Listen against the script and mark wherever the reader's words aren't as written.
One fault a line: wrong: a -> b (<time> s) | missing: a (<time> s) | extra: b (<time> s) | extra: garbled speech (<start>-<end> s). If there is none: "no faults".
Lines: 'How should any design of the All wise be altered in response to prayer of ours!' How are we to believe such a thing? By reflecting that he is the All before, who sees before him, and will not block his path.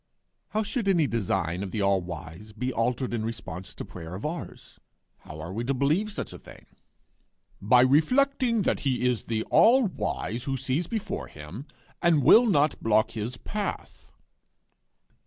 wrong: before -> wise (9.9 s)